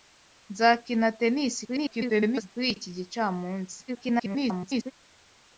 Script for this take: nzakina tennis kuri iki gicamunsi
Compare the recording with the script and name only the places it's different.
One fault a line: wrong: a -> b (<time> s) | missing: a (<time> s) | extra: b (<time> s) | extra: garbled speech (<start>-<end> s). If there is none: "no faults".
extra: garbled speech (1.7-2.5 s)
extra: garbled speech (3.9-4.9 s)